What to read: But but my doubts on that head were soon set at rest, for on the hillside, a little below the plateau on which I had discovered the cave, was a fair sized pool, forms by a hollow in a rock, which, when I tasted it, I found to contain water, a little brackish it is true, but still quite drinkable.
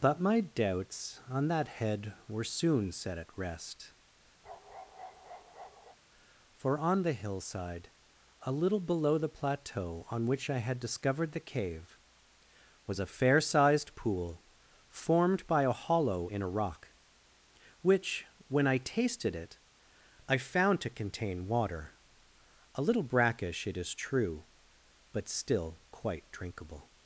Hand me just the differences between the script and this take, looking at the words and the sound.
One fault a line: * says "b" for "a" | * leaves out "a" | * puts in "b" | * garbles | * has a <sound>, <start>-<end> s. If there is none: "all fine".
* leaves out "but"
* has a bark, 4.4-6.0 s
* says "formed" for "forms"